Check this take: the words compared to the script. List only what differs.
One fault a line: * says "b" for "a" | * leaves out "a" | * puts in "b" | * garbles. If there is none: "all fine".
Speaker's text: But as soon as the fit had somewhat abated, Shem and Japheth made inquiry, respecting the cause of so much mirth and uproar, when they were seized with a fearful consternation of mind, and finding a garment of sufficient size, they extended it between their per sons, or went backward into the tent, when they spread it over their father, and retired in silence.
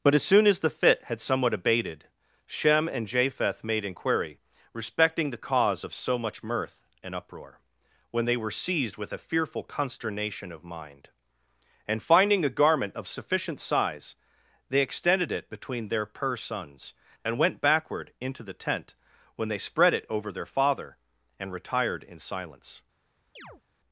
* says "and" for "or"